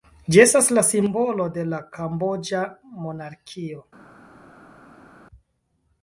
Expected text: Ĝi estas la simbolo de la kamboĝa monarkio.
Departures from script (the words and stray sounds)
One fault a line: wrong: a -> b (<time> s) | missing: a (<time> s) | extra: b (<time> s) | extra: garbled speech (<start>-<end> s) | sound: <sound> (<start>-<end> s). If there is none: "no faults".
no faults